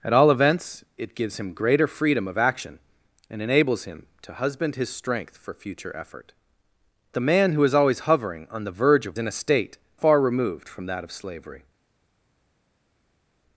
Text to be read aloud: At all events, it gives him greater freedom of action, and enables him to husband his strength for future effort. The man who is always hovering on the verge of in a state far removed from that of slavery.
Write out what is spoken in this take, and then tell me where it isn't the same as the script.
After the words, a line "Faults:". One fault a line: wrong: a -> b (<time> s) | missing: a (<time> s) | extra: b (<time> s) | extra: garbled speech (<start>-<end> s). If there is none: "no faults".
At all events, it gives him greater freedom of action, and enables him to husband his strength for future effort. The man who is always hovering on the verge of in a state far removed from that of slavery.
Faults:
no faults